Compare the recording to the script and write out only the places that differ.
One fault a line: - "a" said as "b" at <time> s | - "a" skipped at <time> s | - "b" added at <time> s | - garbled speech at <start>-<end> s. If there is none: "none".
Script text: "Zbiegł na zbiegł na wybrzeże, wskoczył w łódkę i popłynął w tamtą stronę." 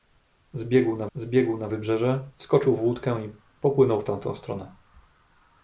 none